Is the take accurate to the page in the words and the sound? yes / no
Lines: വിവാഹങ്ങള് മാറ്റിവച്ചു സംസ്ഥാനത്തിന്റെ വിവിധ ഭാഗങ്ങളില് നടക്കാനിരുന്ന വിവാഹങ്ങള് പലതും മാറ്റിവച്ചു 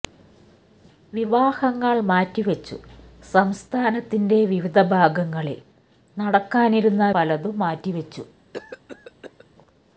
no